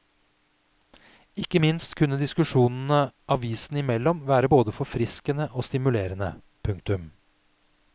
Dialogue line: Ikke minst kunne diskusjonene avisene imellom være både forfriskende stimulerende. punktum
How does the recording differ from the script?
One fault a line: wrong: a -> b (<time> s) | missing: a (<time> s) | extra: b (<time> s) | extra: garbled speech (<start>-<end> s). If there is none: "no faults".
extra: og (5.5 s)